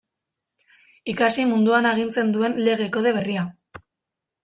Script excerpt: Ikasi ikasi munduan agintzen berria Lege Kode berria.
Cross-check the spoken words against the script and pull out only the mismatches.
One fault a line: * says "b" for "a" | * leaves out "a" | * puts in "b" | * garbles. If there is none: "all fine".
* leaves out "ikasi"
* says "duen" for "berria"